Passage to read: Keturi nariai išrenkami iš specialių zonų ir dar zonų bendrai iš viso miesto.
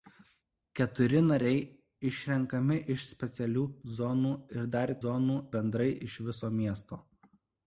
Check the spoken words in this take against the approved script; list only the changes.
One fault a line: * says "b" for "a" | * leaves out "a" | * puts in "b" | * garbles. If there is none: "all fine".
all fine